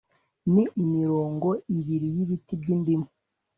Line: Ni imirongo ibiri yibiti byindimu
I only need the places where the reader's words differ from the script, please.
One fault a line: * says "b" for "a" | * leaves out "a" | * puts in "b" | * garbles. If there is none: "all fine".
all fine